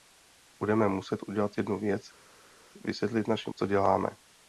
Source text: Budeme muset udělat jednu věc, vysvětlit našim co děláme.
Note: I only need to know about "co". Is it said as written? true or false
true